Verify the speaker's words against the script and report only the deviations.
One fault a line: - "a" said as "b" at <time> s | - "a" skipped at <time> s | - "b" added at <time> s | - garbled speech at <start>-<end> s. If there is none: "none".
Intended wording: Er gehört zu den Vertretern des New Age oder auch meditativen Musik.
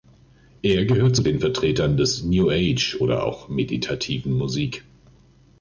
none